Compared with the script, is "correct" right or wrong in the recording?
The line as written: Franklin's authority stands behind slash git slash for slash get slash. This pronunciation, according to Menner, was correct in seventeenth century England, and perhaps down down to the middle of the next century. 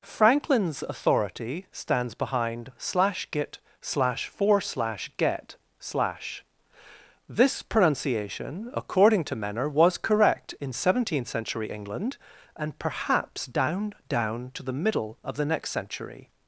right